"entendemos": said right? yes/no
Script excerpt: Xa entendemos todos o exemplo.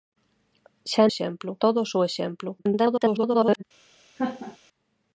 no